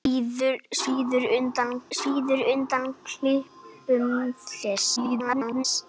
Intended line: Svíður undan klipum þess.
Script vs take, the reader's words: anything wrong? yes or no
yes